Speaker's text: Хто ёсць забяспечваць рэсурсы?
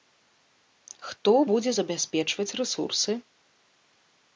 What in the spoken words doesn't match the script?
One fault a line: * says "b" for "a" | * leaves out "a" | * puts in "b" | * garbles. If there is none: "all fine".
* says "будзе" for "ёсць"